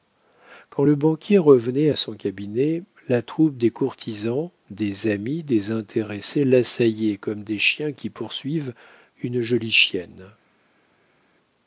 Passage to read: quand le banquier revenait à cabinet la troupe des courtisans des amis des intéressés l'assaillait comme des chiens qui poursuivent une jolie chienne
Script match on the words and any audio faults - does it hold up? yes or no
no